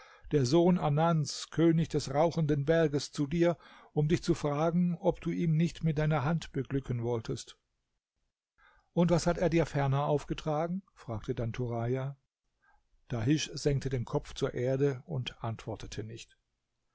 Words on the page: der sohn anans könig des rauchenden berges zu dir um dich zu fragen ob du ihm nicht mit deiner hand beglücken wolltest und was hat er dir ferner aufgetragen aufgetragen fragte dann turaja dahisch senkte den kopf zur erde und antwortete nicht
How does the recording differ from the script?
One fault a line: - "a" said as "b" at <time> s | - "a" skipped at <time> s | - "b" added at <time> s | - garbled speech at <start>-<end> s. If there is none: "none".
- "aufgetragen" skipped at 10.8 s